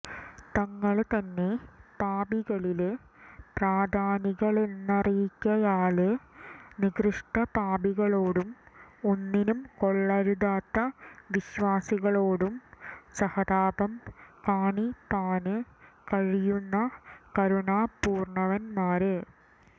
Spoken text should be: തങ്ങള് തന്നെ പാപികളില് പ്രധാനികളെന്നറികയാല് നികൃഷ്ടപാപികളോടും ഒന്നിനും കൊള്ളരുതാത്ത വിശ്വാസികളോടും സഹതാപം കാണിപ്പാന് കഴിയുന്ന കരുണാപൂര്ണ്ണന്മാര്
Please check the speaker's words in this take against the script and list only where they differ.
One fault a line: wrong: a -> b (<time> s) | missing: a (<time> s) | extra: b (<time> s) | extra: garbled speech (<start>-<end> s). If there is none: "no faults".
no faults